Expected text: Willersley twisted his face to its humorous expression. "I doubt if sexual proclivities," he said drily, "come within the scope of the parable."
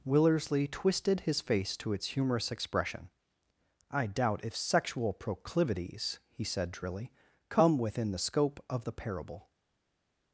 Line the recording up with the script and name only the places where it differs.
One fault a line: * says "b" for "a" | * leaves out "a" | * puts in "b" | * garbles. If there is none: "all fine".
all fine